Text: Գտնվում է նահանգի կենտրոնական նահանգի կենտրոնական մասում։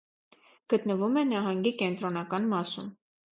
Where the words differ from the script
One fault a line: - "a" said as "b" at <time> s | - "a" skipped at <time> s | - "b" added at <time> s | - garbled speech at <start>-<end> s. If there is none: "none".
- "նահանգի կենտրոնական" skipped at 2.5 s